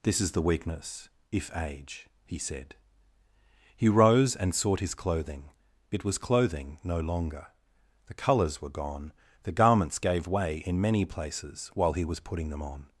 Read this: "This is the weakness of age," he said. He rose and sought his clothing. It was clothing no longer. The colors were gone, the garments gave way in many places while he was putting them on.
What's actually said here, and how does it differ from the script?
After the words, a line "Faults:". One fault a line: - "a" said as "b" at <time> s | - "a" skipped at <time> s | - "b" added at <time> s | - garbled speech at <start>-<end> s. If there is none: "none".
"This is the weakness if age," he said. He rose and sought his clothing. It was clothing no longer. The colors were gone, the garments gave way in many places while he was putting them on.
Faults:
- "of" said as "if" at 1.3 s